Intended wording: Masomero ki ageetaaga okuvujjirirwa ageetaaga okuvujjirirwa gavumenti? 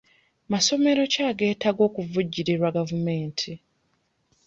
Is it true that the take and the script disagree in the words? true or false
true